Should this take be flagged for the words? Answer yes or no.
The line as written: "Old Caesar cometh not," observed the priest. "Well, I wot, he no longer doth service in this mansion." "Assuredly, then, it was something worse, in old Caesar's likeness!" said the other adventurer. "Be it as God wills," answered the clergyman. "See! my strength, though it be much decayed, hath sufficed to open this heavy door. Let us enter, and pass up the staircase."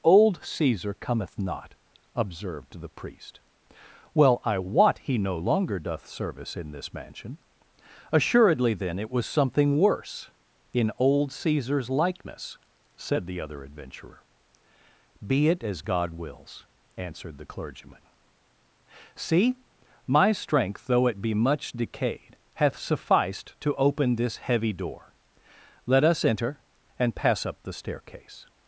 no